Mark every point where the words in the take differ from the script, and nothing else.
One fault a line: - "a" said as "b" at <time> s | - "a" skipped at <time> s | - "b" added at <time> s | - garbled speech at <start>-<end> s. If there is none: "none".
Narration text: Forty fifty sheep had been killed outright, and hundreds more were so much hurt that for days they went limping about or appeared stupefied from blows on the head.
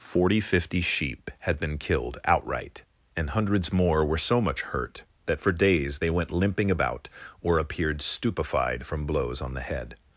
none